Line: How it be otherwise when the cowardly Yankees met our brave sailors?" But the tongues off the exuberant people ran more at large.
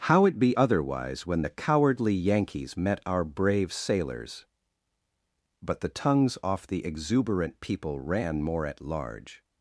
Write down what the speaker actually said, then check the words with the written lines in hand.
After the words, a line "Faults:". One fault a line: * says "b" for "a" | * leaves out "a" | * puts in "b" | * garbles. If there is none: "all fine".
How it be otherwise when the cowardly Yankees met our brave sailors?" But the tongues off the exuberant people ran more at large.
Faults:
all fine